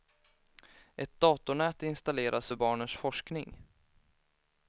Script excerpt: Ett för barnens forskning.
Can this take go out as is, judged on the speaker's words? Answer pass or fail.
fail